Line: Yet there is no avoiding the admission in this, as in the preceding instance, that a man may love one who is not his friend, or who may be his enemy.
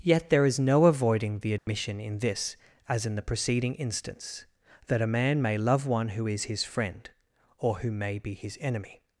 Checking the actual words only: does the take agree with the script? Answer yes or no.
no